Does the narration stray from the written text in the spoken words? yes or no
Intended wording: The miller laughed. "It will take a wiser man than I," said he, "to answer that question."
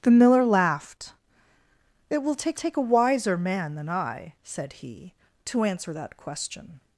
yes